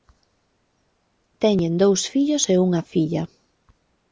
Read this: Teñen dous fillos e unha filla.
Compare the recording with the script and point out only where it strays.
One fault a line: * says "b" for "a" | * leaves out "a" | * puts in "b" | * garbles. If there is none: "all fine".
all fine